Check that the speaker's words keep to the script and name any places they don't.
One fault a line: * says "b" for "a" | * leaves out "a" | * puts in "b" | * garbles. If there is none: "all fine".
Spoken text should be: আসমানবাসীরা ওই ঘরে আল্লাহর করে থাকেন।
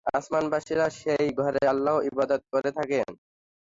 * says "সেই" for "ওই"
* puts in "ইবাদত"